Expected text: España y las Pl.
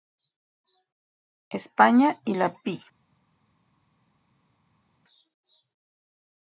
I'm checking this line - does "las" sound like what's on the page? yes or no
no